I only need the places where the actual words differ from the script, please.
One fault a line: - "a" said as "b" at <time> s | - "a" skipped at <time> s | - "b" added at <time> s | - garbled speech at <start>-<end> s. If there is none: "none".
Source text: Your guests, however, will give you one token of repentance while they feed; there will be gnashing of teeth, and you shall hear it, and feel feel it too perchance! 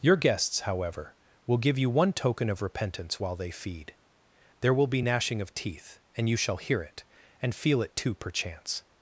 - "feel" skipped at 7.8 s